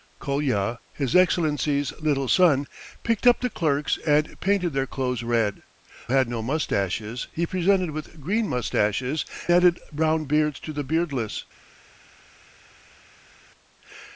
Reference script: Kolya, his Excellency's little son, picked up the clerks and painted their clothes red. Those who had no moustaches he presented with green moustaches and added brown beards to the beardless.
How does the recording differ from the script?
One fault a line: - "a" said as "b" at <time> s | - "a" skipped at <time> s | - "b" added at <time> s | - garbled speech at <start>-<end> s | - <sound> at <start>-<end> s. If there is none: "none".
- "Those who" skipped at 5.6 s
- "and" skipped at 9.2 s